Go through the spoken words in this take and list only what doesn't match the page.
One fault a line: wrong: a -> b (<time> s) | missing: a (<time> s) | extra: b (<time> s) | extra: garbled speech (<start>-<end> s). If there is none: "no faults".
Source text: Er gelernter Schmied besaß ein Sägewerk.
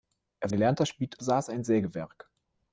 no faults